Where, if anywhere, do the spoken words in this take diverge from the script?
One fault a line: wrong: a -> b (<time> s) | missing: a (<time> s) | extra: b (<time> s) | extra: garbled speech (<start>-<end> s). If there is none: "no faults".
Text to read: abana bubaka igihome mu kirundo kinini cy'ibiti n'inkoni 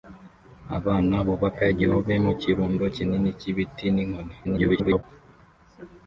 extra: garbled speech (4.4-5.0 s)